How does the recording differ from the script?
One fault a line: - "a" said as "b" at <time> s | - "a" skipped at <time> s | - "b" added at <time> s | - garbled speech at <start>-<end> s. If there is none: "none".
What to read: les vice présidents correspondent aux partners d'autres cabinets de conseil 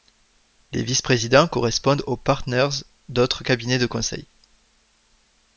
none